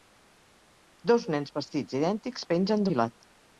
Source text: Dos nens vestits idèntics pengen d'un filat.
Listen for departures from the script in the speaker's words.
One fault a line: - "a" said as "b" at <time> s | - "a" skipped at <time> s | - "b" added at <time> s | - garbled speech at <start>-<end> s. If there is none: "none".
- "d'un" skipped at 2.9 s